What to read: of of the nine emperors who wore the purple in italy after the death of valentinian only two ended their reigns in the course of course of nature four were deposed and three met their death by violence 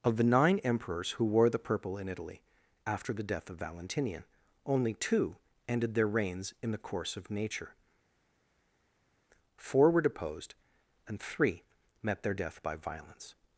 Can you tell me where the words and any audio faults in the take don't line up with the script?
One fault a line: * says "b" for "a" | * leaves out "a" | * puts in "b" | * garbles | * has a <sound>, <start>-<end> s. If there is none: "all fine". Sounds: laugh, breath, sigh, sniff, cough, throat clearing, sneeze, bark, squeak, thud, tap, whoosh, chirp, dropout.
* leaves out "of"
* leaves out "course of"